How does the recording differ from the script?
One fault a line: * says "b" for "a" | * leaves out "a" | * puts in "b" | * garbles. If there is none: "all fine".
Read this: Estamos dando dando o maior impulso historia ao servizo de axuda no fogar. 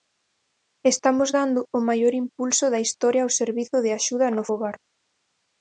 * leaves out "dando"
* puts in "da"